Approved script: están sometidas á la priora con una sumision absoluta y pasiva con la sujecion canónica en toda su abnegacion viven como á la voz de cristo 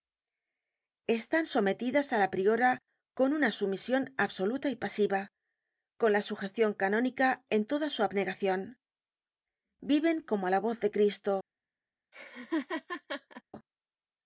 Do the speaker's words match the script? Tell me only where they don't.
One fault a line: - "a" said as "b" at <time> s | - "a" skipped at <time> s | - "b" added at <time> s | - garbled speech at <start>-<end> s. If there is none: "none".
none